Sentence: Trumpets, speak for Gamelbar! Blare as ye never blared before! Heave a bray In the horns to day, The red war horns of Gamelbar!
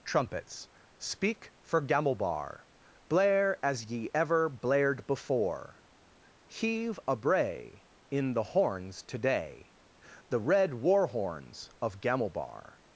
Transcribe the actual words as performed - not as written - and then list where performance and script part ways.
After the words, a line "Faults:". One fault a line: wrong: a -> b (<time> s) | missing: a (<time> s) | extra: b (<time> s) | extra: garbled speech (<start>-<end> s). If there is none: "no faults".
Trumpets, speak for Gamelbar! Blare as ye ever blared before! Heave a bray In the horns to day, The red war horns of Gamelbar!
Faults:
wrong: never -> ever (4.2 s)